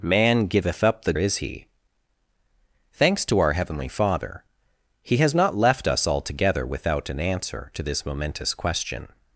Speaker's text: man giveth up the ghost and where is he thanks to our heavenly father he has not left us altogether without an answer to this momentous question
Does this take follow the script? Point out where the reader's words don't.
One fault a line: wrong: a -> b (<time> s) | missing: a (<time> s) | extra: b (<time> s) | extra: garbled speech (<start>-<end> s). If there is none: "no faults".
missing: ghost and where (1.1 s)